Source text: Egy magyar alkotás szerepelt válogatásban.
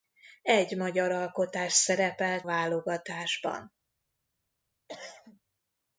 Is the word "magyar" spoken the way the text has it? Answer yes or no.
yes